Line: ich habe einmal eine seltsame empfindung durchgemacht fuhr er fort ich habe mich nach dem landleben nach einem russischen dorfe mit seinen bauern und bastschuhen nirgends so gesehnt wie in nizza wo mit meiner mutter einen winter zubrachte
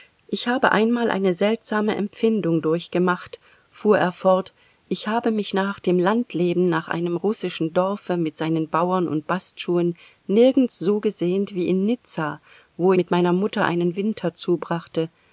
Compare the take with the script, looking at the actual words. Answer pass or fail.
pass